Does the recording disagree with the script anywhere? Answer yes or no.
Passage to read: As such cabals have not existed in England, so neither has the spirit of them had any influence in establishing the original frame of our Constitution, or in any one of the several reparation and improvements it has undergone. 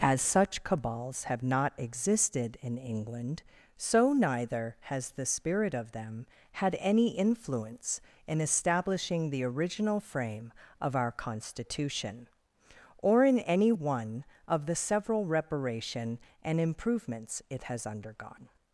no